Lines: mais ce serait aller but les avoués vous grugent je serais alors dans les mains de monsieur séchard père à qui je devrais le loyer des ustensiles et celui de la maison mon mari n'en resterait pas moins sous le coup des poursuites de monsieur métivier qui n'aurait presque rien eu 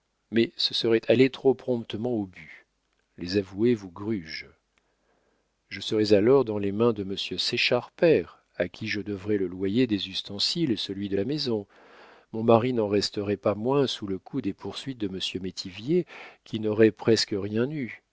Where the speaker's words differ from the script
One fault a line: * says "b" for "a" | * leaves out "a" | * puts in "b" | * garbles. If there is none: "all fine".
* puts in "trop promptement au"